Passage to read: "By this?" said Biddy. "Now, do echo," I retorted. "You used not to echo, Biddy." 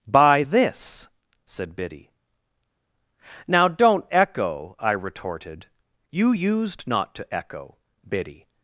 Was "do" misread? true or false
true